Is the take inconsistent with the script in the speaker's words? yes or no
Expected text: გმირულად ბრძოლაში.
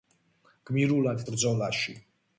no